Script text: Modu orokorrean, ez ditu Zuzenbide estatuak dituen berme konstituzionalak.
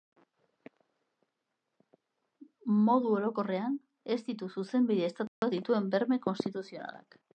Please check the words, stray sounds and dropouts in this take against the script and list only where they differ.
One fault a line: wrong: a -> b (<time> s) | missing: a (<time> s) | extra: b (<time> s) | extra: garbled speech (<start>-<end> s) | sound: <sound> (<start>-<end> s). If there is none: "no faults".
sound: dropout (5.3-5.4 s)